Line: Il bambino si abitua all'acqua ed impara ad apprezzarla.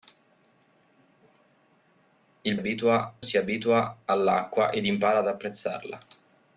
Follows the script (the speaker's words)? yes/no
no